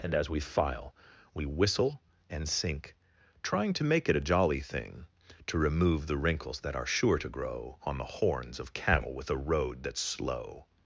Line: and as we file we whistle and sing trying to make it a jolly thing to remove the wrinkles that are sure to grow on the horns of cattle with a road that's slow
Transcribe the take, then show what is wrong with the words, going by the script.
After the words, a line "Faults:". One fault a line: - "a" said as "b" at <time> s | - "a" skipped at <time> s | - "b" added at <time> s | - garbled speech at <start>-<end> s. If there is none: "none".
and as we file we whistle and sink trying to make it a jolly thing to remove the wrinkles that are sure to grow on the horns of cattle with a road that's slow
Faults:
- "sing" said as "sink" at 2.5 s